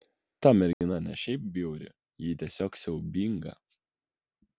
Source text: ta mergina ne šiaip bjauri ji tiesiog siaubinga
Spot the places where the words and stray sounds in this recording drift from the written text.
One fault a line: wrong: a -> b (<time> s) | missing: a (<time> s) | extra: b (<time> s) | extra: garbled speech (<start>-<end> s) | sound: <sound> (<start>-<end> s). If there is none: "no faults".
sound: dropout (0.7-0.8 s)